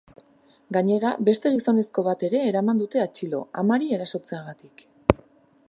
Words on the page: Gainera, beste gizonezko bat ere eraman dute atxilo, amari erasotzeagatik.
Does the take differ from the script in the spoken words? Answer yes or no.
no